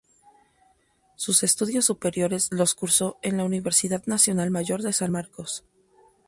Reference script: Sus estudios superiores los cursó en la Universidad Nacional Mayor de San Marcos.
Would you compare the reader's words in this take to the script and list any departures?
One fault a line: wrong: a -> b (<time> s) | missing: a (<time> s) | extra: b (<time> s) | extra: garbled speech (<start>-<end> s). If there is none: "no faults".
no faults